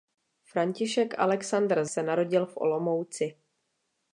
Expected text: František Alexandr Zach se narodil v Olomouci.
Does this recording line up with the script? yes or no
no